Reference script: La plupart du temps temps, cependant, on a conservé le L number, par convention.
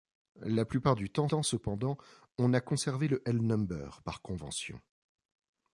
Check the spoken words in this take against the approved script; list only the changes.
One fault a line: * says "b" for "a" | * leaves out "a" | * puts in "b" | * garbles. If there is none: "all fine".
all fine